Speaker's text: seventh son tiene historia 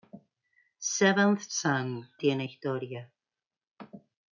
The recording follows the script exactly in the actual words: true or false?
true